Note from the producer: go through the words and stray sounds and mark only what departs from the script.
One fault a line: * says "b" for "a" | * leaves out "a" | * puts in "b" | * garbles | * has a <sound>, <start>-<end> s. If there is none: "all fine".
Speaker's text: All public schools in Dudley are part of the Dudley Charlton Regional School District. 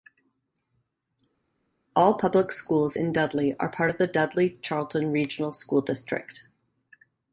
all fine